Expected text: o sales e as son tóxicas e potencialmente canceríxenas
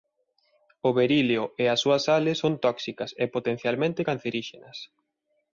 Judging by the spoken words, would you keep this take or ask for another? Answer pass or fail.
fail